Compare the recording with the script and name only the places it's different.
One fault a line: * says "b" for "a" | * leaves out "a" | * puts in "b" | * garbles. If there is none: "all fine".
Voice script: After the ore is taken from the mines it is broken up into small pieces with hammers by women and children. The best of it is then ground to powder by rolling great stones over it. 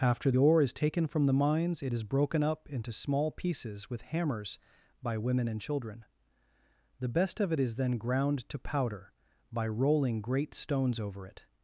* leaves out "the"